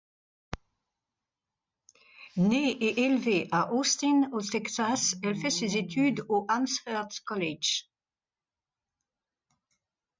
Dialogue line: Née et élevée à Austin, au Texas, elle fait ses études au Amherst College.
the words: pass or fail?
pass